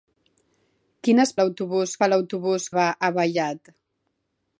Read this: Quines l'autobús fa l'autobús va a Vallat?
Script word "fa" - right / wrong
right